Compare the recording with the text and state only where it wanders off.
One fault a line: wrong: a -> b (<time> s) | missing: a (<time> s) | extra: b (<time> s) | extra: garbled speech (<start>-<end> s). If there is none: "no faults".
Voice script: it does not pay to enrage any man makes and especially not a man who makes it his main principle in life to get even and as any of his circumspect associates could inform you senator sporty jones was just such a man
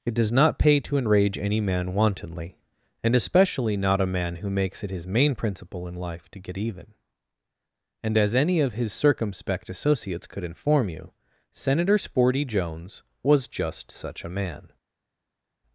wrong: makes -> wantonly (1.9 s)